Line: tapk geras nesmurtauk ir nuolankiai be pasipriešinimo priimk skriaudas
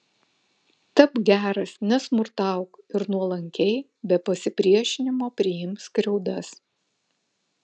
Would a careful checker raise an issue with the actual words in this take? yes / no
no